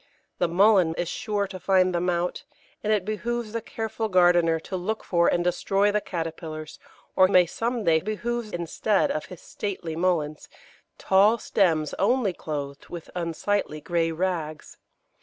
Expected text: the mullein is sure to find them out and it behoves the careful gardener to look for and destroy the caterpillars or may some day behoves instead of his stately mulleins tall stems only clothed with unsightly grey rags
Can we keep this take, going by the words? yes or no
yes